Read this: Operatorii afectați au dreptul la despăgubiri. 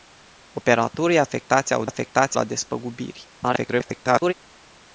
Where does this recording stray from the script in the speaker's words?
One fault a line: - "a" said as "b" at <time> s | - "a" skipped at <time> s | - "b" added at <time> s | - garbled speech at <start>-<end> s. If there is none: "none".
- "dreptul" said as "afectați" at 1.8 s
- garbled speech at 3.4-4.3 s